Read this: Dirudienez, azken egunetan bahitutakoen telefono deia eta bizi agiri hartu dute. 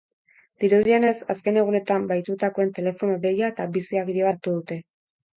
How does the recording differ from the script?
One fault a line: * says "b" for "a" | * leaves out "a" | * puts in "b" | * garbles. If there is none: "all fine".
all fine